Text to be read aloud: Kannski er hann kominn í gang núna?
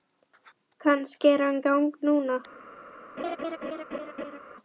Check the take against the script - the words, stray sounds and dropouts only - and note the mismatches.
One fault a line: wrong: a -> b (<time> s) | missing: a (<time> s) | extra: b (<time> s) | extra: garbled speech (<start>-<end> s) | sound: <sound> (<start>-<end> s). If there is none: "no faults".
missing: kominn (1.6 s)
sound: laugh (3.2-4.4 s)